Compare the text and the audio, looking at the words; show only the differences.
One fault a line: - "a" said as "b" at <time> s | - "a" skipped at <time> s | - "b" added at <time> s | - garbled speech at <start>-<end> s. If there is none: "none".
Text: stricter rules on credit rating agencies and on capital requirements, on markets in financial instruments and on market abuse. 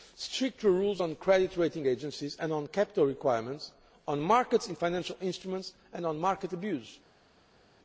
none